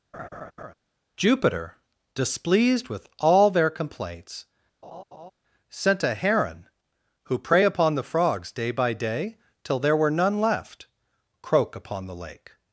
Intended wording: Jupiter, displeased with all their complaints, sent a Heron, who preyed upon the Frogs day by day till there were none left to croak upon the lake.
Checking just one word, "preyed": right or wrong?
wrong